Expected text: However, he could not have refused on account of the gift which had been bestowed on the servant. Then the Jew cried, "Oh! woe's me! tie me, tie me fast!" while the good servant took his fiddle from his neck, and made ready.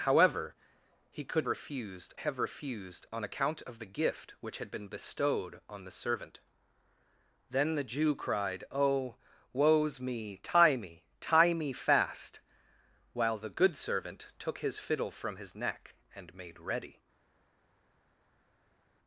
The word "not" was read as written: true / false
false